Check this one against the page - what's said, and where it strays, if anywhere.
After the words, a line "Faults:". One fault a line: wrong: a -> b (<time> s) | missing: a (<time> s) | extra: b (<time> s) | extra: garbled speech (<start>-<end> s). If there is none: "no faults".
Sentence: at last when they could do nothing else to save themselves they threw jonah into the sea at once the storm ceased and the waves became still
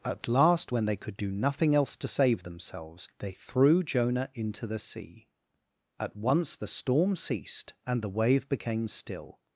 at last when they could do nothing else to save themselves they threw jonah into the sea at once the storm ceased and the wave became still
Faults:
wrong: waves -> wave (8.1 s)